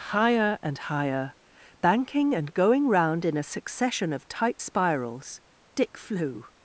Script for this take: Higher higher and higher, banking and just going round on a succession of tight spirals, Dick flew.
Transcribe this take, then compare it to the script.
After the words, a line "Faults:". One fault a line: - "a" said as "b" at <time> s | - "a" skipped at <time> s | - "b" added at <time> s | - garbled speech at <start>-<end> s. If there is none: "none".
Higher and higher, banking and going round in a succession of tight spirals, Dick flew.
Faults:
- "higher" skipped at 0.6 s
- "just" skipped at 2.5 s
- "on" said as "in" at 3.2 s